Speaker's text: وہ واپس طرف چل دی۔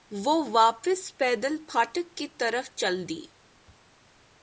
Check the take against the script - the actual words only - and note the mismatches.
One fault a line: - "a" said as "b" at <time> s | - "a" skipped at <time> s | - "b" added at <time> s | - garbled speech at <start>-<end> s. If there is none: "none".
- "پیدل پھاٹک کی" added at 1.2 s